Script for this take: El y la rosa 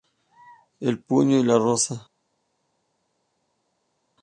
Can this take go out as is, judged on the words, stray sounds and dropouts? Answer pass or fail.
fail